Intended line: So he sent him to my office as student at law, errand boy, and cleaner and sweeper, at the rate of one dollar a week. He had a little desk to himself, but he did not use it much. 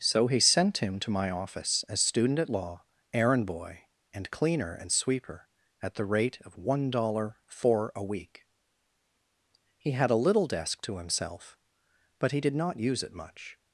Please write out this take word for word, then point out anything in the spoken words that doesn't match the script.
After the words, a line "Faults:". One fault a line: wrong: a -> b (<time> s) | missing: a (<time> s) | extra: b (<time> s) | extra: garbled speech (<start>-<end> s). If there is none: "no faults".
So he sent him to my office as student at law, errand boy, and cleaner and sweeper, at the rate of one dollar four a week. He had a little desk to himself, but he did not use it much.
Faults:
extra: four (7.5 s)